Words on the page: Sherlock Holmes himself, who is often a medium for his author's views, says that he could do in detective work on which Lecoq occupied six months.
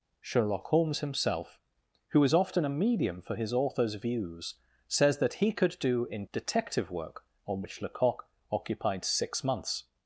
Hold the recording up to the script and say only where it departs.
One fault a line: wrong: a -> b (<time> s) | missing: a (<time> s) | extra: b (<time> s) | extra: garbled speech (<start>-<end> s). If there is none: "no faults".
no faults